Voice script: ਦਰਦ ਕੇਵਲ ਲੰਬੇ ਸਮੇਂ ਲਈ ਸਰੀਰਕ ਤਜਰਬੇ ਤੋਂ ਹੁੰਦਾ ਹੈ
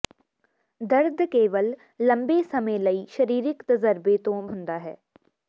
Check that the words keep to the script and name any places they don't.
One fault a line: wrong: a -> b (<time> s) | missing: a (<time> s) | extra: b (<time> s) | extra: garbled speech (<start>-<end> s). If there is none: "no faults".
no faults